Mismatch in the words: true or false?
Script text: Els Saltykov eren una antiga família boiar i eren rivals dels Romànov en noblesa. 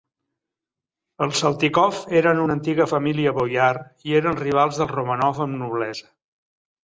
false